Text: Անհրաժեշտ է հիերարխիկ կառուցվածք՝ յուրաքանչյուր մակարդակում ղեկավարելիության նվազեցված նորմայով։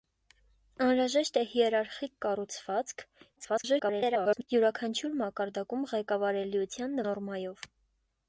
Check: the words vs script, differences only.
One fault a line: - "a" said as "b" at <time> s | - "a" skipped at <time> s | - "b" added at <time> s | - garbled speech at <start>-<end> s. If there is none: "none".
- garbled speech at 3.4-4.5 s
- "նվազեցված" skipped at 7.0 s